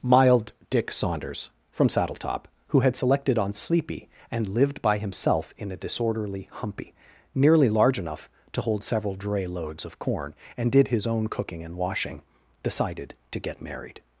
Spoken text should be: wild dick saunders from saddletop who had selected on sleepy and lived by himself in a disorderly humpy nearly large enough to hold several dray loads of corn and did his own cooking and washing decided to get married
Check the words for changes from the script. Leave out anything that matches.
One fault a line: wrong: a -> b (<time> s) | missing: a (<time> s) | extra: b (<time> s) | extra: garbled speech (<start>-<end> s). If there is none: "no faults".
wrong: wild -> mild (0.0 s)